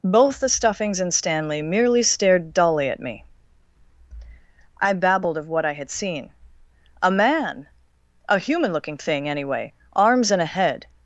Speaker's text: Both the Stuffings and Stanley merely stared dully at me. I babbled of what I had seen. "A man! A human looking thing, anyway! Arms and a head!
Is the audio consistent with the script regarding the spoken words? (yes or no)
yes